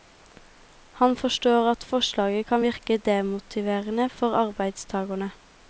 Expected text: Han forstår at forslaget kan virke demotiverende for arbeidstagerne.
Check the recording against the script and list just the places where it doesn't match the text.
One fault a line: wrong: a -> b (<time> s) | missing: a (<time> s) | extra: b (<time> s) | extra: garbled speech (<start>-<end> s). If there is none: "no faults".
no faults